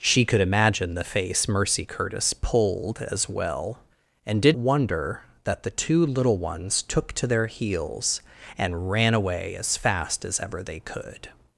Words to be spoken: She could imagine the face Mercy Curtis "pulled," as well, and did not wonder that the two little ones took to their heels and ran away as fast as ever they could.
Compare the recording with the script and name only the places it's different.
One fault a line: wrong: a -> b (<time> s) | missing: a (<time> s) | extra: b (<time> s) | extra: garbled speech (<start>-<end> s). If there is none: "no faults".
missing: not (4.6 s)